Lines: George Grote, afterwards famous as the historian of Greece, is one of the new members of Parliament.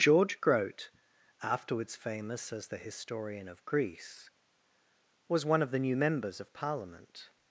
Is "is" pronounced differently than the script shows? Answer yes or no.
yes